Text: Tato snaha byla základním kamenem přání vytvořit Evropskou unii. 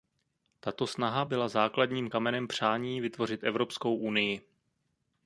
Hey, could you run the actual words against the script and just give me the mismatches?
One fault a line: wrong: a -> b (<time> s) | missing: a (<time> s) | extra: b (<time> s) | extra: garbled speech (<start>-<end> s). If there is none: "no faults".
no faults